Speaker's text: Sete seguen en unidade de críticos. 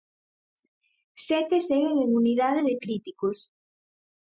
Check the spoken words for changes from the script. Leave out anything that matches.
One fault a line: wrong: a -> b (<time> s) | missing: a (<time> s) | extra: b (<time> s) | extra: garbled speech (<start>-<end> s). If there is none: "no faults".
no faults